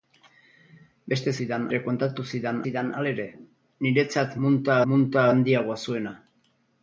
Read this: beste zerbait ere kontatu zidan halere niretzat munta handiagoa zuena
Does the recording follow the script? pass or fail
fail